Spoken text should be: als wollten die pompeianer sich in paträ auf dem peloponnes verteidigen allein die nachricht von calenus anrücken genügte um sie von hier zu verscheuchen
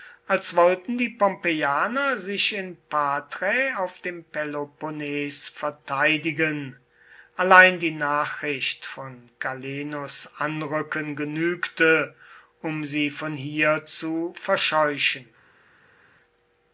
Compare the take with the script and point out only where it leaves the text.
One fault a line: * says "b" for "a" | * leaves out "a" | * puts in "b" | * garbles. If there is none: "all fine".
all fine